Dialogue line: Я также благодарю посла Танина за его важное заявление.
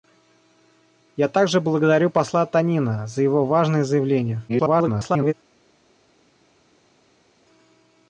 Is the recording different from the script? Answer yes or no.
yes